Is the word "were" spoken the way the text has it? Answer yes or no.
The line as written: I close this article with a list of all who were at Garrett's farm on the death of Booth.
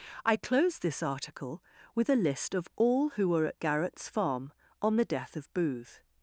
yes